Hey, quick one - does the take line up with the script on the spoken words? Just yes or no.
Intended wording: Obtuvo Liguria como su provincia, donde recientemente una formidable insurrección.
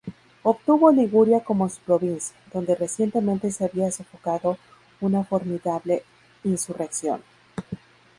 no